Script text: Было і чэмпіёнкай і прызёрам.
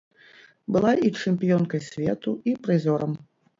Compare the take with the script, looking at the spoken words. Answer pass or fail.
fail